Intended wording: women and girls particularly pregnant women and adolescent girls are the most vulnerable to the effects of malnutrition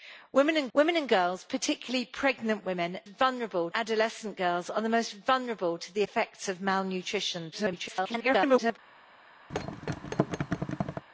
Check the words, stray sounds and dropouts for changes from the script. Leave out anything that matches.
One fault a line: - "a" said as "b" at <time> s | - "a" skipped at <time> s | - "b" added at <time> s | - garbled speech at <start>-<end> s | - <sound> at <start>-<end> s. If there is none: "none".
- "women and" added at 0.7 s
- "and" said as "vulnerable" at 3.1 s
- garbled speech at 7.5-8.8 s
- thud at 9.5-11.0 s